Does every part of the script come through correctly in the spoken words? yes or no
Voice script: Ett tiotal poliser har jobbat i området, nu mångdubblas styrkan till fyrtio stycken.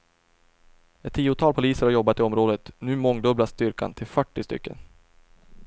yes